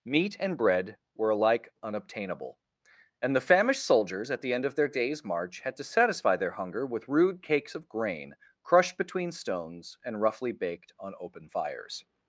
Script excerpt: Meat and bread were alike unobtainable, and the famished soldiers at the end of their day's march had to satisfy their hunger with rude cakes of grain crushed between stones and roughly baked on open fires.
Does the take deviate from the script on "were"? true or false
false